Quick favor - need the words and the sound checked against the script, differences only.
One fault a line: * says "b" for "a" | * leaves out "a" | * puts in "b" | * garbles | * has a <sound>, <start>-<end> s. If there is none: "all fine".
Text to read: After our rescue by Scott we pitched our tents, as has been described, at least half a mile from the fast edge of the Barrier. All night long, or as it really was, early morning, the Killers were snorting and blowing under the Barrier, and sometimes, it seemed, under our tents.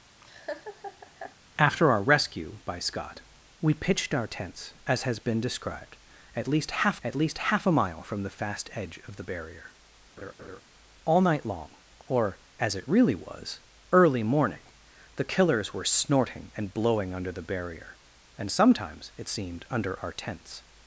* has a laugh, 0.2-1.4 s
* puts in "at least half"
* has a laugh, 10.2-10.6 s